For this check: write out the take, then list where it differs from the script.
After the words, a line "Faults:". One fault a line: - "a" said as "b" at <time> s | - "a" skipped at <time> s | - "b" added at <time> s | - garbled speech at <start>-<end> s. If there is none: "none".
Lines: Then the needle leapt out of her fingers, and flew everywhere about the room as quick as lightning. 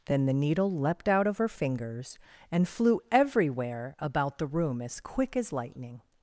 Then the needle leapt out of her fingers, and flew everywhere about the room as quick as lightning.
Faults:
none